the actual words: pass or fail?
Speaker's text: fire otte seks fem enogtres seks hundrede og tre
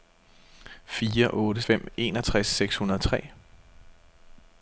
fail